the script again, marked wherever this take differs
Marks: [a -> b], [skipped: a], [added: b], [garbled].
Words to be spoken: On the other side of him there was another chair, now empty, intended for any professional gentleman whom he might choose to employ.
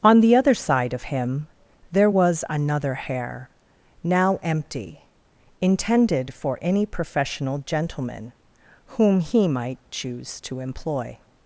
On the other side of him there was another [chair, -> hair] now empty, intended for any professional gentleman whom he might choose to employ.